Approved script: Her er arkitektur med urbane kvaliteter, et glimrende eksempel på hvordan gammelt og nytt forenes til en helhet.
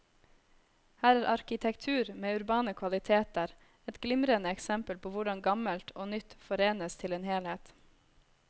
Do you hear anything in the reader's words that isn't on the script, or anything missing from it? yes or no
no